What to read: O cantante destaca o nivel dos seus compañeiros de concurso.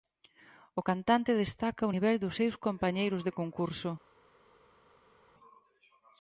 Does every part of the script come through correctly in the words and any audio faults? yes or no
yes